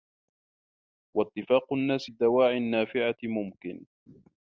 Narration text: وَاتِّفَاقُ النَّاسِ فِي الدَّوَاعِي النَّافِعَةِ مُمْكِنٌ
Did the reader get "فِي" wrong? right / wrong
wrong